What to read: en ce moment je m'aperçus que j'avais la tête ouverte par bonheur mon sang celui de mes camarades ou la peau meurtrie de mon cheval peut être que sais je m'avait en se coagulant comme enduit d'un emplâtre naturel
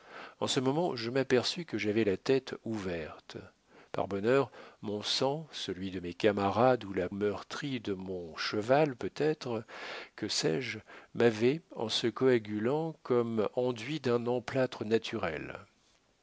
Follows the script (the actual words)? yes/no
no